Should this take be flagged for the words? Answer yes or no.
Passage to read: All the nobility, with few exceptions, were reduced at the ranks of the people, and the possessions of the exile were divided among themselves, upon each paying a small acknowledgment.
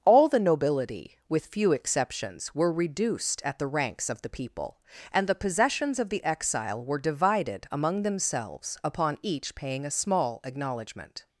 no